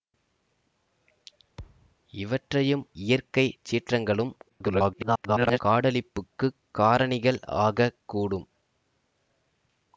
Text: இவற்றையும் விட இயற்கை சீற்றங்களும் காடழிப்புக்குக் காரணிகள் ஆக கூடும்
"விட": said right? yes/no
no